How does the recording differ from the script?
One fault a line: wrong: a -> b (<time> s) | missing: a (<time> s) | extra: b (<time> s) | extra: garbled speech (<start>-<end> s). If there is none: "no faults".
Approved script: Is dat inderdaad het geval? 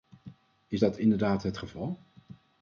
no faults